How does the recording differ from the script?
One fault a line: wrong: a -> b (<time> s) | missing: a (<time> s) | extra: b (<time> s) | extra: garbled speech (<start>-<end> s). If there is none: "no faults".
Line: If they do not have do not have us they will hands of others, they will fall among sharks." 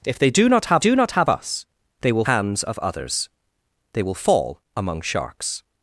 no faults